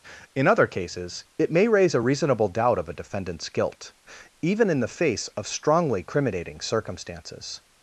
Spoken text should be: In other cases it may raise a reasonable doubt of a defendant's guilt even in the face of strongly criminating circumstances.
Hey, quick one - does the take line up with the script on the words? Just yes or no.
yes